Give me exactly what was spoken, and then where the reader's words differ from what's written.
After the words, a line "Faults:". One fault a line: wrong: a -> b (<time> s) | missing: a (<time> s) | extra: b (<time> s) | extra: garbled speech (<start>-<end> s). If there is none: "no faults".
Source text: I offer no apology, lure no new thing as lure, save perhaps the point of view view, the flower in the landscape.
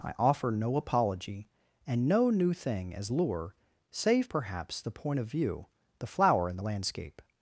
I offer no apology, and no new thing as lure, save perhaps the point of view, the flower in the landscape.
Faults:
wrong: lure -> and (1.9 s)
missing: view (5.7 s)